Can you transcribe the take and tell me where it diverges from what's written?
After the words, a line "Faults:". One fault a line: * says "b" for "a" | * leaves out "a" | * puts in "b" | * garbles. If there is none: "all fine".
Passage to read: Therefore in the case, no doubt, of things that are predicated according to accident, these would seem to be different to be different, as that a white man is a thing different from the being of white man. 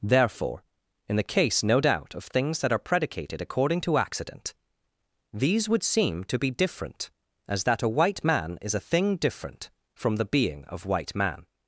Therefore in the case, no doubt, of things that are predicated according to accident, these would seem to be different, as that a white man is a thing different from the being of white man.
Faults:
* leaves out "to be different"